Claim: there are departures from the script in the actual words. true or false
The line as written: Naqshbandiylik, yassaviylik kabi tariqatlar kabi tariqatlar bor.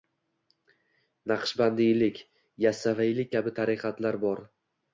true